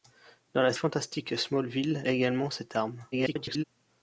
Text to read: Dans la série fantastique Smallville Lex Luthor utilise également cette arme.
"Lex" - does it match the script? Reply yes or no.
no